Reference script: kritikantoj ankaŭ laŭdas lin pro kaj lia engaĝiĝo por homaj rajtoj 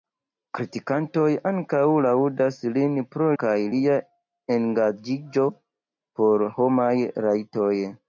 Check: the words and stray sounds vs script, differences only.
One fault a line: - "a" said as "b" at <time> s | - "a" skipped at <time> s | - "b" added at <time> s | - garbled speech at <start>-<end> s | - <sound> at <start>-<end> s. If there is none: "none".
none